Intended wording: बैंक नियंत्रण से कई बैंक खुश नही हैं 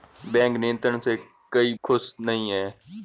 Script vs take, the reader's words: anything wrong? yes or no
yes